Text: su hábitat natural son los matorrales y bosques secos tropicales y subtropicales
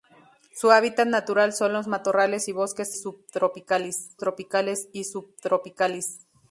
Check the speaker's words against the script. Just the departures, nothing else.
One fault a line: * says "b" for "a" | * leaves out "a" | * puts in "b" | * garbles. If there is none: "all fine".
* says "subtropicales" for "secos"